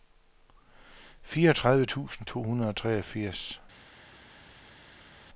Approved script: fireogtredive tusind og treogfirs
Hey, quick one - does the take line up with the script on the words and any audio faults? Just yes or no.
no